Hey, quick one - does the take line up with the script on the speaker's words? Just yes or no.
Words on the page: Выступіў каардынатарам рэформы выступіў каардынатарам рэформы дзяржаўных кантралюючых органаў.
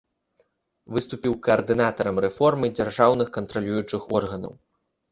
no